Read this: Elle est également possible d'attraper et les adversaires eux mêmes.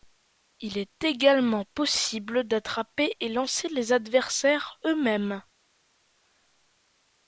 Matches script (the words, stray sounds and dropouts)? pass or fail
fail